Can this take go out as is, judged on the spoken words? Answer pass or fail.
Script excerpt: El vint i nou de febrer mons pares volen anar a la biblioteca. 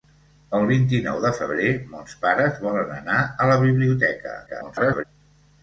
fail